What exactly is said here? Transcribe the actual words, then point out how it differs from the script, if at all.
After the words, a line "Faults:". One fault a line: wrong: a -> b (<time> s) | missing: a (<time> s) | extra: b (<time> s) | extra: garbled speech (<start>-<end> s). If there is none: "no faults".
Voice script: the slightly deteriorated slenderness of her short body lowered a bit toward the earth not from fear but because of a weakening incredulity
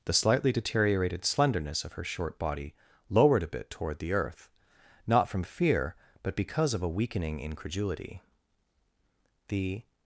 the slightly deteriorated slenderness of her short body lowered a bit toward the earth not from fear but because of a weakening incredulity the
Faults:
extra: the (9.5 s)